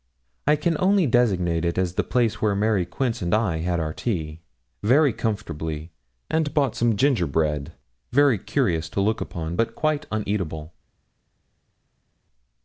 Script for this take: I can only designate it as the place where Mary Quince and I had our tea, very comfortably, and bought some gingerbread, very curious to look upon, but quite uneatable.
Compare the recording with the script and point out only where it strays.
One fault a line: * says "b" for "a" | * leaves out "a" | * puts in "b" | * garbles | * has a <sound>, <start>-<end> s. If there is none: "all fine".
all fine